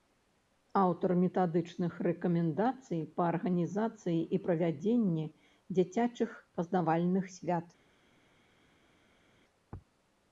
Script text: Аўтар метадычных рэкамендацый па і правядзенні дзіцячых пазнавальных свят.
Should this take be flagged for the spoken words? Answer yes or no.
yes